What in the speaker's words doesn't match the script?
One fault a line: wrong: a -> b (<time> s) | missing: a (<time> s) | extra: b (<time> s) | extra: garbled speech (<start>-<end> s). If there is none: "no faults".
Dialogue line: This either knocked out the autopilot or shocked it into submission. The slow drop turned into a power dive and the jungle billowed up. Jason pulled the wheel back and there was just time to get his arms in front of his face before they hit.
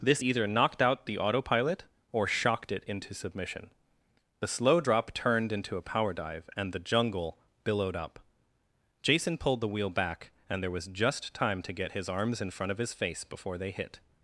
no faults